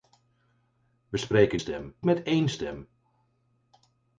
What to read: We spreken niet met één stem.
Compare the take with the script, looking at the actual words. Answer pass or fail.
fail